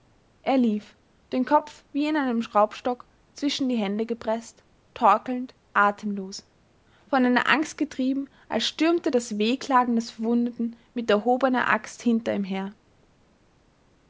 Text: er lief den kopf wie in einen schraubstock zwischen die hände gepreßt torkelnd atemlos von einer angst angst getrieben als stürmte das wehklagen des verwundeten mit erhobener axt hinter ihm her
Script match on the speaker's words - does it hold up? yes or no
no